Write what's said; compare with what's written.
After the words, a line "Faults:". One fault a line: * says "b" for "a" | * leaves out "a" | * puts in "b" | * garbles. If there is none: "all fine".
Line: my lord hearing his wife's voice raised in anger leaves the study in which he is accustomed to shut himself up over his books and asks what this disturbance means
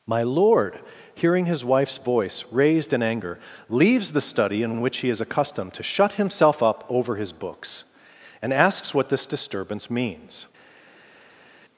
my lord hearing his wife's voice raised in anger leaves the study in in which he is accustomed to shut himself up over his books and asks what this disturbance means
Faults:
* puts in "in"